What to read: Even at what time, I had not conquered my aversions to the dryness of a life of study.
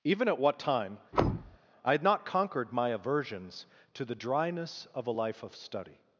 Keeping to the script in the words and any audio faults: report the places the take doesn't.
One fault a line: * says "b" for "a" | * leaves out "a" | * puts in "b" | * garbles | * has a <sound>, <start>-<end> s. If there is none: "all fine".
* has a thud, 1.1-1.6 s